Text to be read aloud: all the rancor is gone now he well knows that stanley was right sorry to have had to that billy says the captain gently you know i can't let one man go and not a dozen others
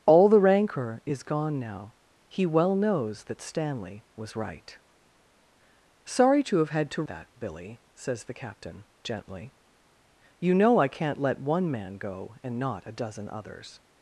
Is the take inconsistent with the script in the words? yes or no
no